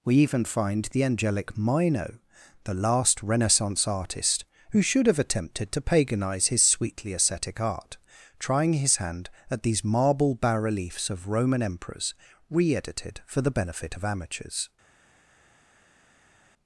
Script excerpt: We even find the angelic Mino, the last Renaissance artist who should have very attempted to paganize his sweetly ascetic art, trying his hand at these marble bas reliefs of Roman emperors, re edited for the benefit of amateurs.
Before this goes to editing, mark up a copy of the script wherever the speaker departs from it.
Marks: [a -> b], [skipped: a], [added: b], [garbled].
We even find the angelic Mino, the last Renaissance artist who should have [skipped: very] attempted to paganize his sweetly ascetic art, trying his hand at these marble bas reliefs of Roman emperors, re edited for the benefit of amateurs.